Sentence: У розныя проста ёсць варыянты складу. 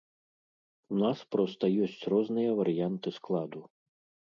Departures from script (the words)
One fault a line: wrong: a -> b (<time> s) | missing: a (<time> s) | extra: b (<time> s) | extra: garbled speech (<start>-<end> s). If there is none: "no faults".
wrong: розныя -> нас (1.0 s)
extra: розныя (2.1 s)